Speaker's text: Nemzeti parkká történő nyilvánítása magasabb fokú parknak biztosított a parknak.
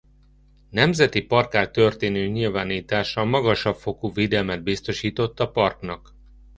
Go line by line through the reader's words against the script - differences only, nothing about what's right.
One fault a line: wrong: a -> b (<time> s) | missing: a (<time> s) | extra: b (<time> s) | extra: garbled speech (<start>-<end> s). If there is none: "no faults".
wrong: parknak -> védelmet (4.1 s)